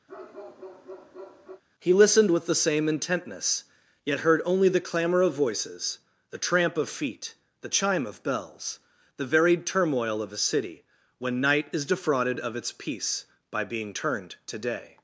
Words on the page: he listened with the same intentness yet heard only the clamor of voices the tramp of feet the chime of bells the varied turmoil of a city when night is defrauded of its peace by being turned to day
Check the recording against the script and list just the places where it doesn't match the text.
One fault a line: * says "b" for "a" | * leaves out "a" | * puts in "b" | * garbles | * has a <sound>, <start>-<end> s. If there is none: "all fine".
* has a bark, 0.1-1.6 s